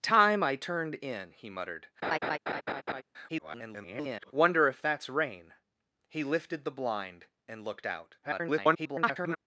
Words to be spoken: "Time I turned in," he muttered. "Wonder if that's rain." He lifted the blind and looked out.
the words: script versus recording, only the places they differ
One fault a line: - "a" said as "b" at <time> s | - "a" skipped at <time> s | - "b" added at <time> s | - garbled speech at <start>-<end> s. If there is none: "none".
- garbled speech at 3.3-4.3 s
- garbled speech at 8.2-9.4 s